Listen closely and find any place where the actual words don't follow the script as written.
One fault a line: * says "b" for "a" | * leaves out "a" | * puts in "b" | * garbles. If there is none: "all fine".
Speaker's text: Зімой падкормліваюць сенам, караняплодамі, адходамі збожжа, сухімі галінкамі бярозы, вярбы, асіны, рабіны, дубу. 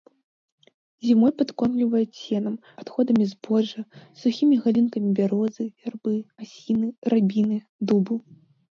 * leaves out "караняплодамі"